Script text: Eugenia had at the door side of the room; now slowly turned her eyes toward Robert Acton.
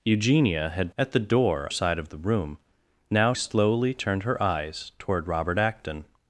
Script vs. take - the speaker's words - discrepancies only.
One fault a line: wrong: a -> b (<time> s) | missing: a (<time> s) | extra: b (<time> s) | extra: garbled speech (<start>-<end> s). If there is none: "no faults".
no faults